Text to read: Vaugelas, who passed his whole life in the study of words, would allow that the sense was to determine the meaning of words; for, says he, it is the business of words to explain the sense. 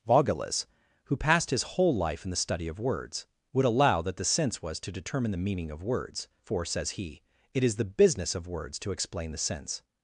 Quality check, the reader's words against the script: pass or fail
pass